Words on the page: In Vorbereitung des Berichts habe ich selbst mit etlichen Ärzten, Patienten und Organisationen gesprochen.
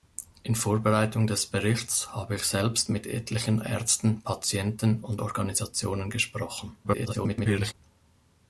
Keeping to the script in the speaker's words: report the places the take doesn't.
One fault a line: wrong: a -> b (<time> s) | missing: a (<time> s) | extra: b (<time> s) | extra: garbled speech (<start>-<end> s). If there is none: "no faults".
extra: garbled speech (6.8-7.7 s)